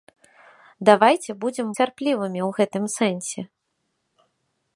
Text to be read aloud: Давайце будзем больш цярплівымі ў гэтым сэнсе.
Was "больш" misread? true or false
true